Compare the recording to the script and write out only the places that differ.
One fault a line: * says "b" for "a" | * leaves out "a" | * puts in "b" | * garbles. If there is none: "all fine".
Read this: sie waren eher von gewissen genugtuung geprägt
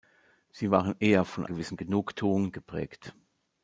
all fine